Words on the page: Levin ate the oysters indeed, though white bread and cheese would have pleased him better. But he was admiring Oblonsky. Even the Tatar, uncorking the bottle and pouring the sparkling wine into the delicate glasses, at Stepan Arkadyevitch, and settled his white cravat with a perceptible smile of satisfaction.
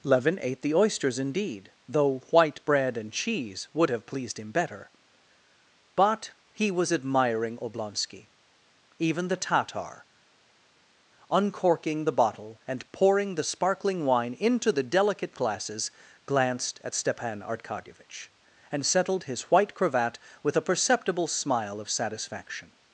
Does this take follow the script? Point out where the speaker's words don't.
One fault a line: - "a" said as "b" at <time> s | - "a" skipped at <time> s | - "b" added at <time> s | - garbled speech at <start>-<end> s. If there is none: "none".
- "glanced" added at 16.2 s